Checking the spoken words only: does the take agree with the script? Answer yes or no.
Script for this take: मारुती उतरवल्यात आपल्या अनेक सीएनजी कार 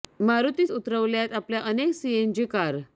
yes